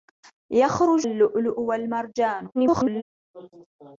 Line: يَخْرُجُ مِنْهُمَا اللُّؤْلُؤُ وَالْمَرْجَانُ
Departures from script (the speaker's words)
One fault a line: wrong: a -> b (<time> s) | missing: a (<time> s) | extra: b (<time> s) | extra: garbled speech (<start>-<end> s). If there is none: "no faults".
missing: مِنْهُمَا (1.1 s)
extra: garbled speech (2.5-3.0 s)